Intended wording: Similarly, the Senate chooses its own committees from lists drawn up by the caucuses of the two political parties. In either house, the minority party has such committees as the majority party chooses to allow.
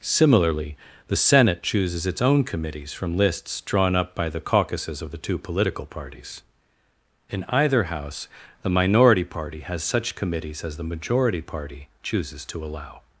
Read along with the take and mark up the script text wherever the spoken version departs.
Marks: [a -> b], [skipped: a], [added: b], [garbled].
Similarly, the Senate chooses its own committees from lists drawn up by the caucuses of the two political parties. In either house, the minority party has such committees as the majority party chooses to allow.